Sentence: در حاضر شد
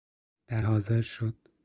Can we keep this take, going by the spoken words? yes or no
yes